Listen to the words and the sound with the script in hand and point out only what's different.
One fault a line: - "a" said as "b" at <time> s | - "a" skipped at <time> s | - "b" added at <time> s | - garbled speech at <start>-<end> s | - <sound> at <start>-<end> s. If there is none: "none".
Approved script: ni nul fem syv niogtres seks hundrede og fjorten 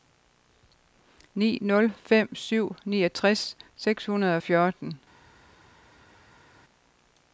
none